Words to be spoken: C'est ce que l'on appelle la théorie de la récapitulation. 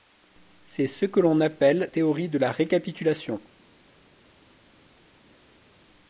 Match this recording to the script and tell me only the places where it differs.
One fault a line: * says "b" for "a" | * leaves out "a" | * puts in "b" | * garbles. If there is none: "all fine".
* leaves out "la"